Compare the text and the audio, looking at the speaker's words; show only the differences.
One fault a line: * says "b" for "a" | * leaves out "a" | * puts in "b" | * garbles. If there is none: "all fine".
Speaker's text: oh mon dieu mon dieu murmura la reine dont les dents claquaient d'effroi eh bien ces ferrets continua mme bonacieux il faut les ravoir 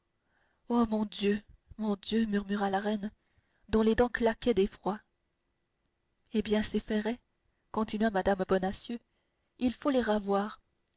all fine